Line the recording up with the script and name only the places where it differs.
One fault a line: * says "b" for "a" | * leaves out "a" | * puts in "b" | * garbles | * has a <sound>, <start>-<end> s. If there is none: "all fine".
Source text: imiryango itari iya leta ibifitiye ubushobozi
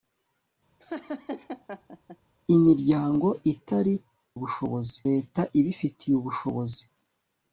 * has a laugh, 0.8-2.2 s
* says "ubushobozi" for "iya"